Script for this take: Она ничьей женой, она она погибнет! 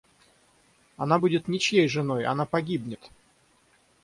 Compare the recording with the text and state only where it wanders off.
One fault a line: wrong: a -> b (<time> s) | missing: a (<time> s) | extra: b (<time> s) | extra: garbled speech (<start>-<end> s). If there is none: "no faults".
extra: будет (1.2 s)
missing: она (2.4 s)